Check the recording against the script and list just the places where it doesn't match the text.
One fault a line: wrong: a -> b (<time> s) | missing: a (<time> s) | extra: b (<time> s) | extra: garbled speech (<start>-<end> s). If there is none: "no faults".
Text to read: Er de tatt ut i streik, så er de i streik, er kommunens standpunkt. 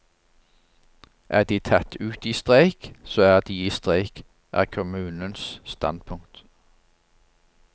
no faults